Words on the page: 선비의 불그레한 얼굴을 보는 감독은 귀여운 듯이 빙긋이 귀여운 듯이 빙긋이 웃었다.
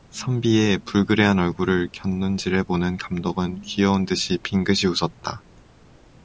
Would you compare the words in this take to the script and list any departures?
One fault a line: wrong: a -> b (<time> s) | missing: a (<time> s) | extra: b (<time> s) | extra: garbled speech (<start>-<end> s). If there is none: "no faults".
extra: 곁눈질해 (1.9 s)
missing: 귀여운 듯이 빙긋이 (4.8 s)